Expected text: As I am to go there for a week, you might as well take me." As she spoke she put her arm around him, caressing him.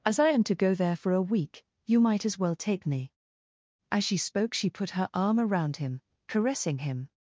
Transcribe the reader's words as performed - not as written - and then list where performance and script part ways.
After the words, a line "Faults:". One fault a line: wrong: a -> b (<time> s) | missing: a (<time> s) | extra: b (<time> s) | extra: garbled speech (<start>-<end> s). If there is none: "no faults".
As I am to go there for a week, you might as well take me." As she spoke she put her arm around him, caressing him.
Faults:
no faults